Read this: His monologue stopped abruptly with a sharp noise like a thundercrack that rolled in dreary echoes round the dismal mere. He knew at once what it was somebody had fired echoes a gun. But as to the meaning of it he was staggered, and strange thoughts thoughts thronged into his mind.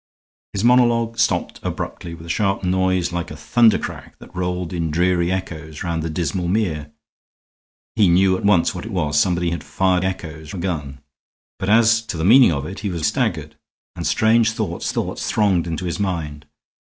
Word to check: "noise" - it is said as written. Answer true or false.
true